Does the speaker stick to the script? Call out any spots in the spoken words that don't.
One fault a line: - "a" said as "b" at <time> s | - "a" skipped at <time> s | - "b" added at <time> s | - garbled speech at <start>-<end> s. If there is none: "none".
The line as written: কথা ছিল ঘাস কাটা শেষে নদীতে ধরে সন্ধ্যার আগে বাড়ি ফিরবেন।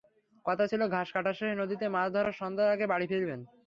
- "মাছ" added at 1.9 s